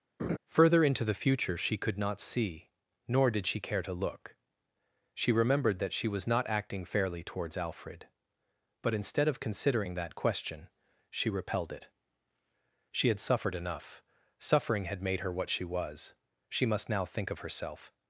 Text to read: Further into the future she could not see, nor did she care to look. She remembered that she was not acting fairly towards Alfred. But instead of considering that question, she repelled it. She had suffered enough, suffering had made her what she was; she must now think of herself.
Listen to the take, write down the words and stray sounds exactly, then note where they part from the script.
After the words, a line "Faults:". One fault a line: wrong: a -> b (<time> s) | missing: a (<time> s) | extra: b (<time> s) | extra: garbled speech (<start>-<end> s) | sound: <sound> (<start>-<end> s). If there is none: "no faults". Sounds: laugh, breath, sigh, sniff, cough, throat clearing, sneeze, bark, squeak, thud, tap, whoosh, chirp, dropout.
Further into the future she could not see, nor did she care to look. She remembered that she was not acting fairly towards Alfred. But instead of considering that question, she repelled it. She had suffered enough, suffering had made her what she was; she must now think of herself.
Faults:
sound: laugh (0.2-0.4 s)